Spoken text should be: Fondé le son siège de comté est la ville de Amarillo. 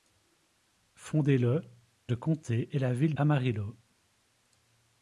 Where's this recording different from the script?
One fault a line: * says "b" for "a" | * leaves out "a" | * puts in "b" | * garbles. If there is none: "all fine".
* leaves out "son siège"
* leaves out "de"